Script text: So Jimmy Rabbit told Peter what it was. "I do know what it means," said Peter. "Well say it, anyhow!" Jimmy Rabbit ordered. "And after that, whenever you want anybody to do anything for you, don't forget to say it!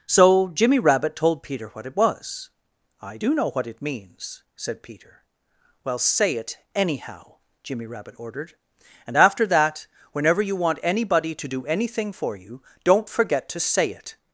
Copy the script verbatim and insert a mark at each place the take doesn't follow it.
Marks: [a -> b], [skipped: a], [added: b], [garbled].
So Jimmy Rabbit told Peter what it was. "I do know what it means," said Peter. "Well say it, anyhow!" Jimmy Rabbit ordered. "And after that, whenever you want anybody to do anything for you, don't forget to say it!